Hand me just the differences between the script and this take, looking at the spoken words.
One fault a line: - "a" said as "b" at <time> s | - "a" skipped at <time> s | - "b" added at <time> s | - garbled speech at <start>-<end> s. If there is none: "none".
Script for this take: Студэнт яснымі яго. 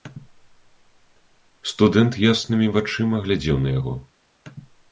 - "вачыма глядзеў на" added at 2.8 s